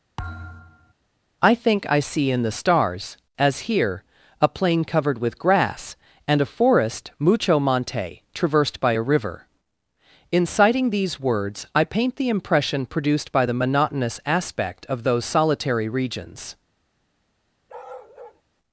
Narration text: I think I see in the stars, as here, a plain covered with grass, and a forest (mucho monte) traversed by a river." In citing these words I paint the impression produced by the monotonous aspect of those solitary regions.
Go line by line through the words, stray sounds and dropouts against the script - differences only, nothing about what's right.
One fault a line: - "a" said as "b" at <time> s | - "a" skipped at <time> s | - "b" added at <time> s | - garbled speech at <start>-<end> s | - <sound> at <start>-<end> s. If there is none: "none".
- thud at 0.2-0.9 s
- bark at 17.7-18.4 s